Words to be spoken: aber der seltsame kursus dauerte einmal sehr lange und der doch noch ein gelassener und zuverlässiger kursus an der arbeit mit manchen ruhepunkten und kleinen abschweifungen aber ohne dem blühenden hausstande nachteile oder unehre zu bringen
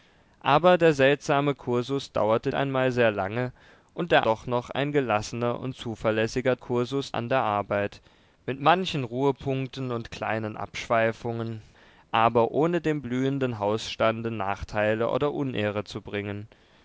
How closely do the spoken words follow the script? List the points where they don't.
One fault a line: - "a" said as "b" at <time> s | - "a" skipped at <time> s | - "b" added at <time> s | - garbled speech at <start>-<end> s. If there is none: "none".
none